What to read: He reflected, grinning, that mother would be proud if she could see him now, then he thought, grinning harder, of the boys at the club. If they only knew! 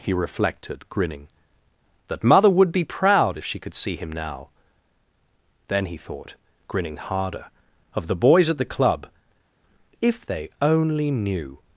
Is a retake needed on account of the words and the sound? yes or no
no